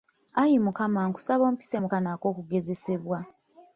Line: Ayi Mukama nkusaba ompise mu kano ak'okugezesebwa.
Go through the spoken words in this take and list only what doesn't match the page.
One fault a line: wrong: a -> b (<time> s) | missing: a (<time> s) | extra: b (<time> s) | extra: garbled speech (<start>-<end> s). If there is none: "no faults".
no faults